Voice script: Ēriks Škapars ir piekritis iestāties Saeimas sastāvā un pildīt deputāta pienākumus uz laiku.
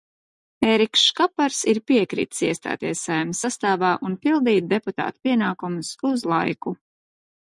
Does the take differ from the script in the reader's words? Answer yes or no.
no